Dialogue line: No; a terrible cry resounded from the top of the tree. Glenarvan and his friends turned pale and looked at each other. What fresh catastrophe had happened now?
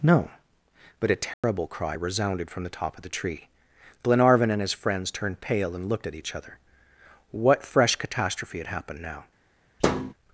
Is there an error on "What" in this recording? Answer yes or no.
no